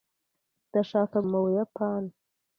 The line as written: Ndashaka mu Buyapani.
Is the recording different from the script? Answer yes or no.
no